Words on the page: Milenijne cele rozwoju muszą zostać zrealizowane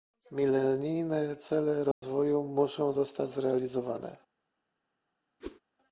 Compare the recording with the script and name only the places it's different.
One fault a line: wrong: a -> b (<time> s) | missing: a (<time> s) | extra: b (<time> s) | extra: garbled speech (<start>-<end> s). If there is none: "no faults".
no faults